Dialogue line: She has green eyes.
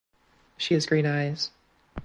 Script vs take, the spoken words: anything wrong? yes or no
no